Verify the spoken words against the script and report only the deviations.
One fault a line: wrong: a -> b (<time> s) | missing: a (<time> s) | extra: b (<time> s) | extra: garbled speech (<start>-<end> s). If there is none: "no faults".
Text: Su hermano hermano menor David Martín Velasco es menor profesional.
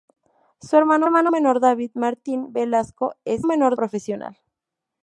no faults